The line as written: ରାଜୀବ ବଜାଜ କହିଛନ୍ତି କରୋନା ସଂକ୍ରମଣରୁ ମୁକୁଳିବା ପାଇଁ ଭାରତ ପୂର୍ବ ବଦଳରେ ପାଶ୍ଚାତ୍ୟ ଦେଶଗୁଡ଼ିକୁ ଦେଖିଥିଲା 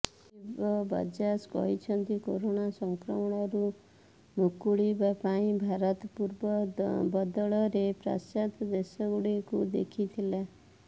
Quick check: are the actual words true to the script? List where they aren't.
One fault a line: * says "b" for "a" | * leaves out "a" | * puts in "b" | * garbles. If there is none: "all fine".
all fine